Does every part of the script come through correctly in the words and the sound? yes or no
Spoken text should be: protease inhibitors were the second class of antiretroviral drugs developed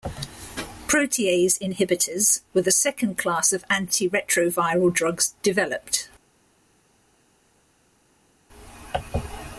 yes